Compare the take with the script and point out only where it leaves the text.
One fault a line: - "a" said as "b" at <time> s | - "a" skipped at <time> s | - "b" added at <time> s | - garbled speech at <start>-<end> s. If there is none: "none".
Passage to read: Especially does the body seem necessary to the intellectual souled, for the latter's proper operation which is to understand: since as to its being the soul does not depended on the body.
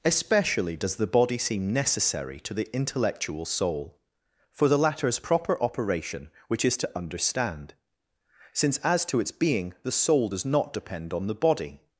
- "souled" said as "soul" at 3.5 s
- "depended" said as "depend" at 10.7 s